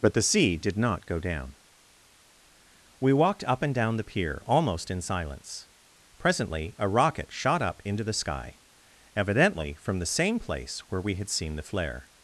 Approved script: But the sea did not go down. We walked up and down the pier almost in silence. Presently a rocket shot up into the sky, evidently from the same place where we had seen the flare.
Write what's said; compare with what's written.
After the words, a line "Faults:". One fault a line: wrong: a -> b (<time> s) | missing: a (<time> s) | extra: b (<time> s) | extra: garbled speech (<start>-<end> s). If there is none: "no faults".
But the sea did not go down. We walked up and down the pier almost in silence. Presently a rocket shot up into the sky, evidently from the same place where we had seen the flare.
Faults:
no faults